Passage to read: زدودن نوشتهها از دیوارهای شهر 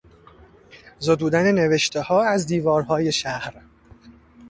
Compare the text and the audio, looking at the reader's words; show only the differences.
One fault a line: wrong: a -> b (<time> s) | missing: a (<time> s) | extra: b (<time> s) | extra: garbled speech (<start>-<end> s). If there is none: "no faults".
no faults